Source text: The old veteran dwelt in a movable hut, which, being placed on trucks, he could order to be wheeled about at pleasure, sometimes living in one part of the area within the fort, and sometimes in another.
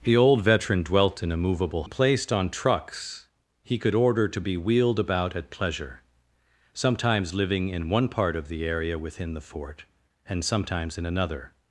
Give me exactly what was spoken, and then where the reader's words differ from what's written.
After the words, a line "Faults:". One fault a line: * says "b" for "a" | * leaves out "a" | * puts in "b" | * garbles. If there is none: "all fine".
The old veteran dwelt in a movable placed on trucks, he could order to be wheeled about at pleasure, sometimes living in one part of the area within the fort, and sometimes in another.
Faults:
* leaves out "hut which being"